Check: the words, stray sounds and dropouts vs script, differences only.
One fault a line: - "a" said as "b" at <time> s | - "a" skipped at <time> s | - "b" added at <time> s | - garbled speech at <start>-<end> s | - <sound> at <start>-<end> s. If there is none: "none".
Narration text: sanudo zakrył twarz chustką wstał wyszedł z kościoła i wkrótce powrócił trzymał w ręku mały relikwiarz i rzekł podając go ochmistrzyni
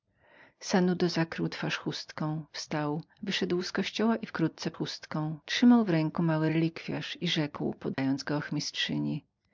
- "powrócił" said as "chustką" at 4.7 s
- dropout at 7.9-8.0 s